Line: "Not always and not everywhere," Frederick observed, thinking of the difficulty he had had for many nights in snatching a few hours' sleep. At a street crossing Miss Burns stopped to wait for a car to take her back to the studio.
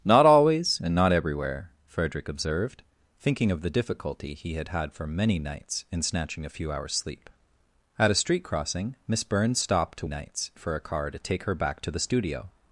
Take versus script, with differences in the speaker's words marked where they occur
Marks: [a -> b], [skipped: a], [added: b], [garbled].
"Not always and not everywhere," Frederick observed, thinking of the difficulty he had had for many nights in snatching a few hours' sleep. At a street crossing Miss Burns stopped to [wait -> nights] for a car to take her back to the studio.